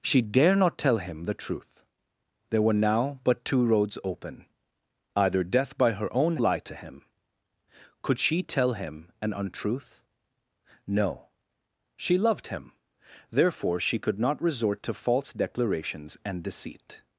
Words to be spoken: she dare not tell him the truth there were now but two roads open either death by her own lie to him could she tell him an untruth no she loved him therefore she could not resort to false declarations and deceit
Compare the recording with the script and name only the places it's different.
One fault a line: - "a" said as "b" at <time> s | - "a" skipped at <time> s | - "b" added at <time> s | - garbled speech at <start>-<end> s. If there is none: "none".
none